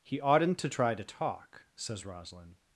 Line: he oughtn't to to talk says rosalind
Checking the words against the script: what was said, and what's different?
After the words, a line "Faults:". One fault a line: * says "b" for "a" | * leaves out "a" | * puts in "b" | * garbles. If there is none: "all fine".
he oughtn't to try to talk says rosalind
Faults:
* puts in "try"